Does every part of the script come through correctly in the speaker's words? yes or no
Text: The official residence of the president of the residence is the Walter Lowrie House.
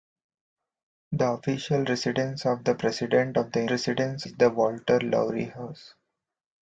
yes